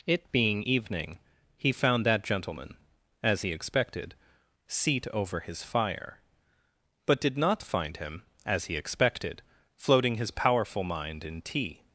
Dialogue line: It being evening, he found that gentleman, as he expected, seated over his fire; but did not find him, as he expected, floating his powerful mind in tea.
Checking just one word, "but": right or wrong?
right